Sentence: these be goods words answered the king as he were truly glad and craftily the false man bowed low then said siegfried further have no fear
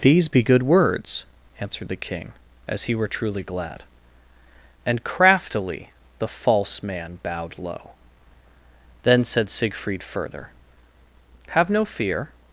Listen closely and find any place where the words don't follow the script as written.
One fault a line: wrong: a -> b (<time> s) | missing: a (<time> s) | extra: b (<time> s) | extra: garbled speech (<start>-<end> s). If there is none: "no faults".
wrong: goods -> good (0.4 s)